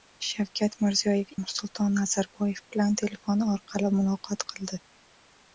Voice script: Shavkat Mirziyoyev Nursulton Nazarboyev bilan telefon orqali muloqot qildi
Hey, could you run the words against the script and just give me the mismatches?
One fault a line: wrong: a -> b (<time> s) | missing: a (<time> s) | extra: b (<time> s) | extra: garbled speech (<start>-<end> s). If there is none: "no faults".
no faults